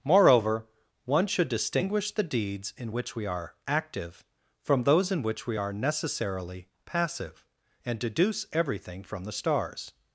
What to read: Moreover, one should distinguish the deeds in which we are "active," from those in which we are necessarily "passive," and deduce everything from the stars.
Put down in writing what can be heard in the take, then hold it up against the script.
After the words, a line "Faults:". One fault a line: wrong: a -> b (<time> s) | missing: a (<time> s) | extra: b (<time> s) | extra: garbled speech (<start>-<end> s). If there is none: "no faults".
Moreover, one should distinguish the deeds in which we are "active," from those in which we are necessarily "passive," and deduce everything from the stars.
Faults:
no faults